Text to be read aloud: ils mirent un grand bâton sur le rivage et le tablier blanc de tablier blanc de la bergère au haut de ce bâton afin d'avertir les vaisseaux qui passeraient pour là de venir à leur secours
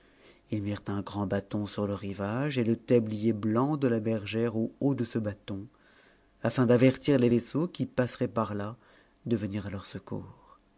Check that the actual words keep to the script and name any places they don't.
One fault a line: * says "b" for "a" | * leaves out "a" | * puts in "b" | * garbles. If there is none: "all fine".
* leaves out "tablier blanc de"
* says "par" for "pour"